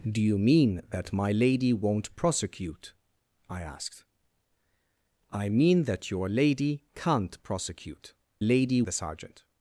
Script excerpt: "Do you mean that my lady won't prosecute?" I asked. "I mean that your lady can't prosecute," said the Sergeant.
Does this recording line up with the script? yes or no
no